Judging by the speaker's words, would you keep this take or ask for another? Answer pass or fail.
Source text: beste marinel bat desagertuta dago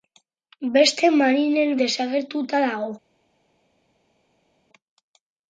fail